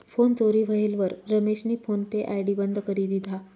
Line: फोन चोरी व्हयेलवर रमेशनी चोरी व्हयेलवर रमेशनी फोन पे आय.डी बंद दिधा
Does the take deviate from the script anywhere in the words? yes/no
yes